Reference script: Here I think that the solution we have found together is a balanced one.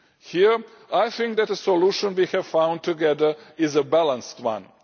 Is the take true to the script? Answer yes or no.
yes